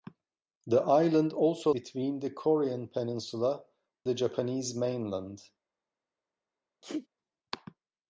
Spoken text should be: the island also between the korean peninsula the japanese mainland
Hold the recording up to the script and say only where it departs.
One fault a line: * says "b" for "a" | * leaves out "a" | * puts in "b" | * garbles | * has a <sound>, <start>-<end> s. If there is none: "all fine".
* has a sneeze, 6.8-7.1 s